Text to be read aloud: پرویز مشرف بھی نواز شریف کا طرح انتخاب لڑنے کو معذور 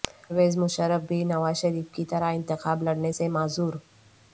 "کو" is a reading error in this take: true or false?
true